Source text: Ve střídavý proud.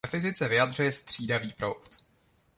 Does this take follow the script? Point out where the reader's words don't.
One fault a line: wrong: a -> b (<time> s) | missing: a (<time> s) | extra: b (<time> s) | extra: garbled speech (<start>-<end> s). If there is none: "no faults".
extra: fyzice vyjadřuje (0.1 s)